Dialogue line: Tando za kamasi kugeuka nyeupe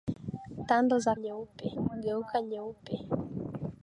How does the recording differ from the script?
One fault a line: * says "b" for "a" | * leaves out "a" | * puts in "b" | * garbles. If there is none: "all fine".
* says "nyeupe" for "kamasi"